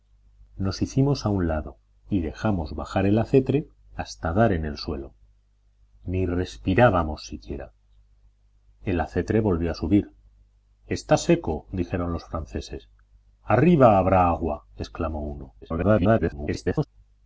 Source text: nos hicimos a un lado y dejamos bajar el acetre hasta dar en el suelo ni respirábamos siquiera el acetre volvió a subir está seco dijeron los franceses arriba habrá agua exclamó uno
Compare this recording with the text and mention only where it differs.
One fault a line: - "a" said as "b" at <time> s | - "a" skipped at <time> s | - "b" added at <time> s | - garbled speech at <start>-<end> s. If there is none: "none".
- garbled speech at 15.6-16.9 s